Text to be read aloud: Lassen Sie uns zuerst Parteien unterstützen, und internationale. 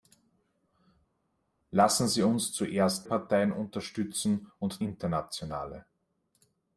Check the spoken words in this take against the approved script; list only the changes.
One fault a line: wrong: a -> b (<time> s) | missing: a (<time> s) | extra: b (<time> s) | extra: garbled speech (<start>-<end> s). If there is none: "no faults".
no faults